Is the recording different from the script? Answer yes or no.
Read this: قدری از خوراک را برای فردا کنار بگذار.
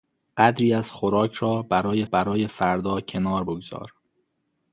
yes